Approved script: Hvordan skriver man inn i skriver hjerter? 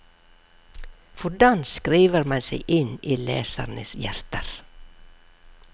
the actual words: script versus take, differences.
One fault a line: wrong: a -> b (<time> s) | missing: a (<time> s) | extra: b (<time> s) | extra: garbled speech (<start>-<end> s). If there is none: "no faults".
extra: seg (2.5 s)
wrong: skriver -> lesernes (3.3 s)